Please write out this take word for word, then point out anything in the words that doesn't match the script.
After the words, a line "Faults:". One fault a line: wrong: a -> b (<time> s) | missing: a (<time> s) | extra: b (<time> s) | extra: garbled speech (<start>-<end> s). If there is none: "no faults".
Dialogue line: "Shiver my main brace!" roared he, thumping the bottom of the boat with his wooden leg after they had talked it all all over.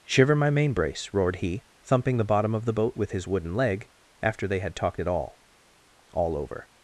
"Shiver my main brace!" roared he, thumping the bottom of the boat with his wooden leg after they had talked it all all over.
Faults:
no faults